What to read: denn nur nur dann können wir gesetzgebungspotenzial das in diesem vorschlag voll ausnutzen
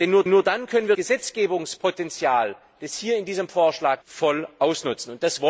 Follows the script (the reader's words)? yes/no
yes